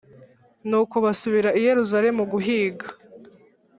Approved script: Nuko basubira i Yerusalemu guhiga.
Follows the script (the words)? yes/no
yes